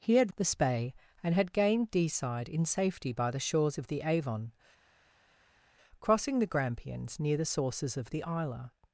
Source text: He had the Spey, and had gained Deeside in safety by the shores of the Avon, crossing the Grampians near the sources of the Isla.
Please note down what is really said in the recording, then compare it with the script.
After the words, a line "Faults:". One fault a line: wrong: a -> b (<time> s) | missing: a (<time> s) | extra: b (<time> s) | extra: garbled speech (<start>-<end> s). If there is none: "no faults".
He had the Spey, and had gained Deeside in safety by the shores of the Avon, crossing the Grampians near the sources of the Isla.
Faults:
no faults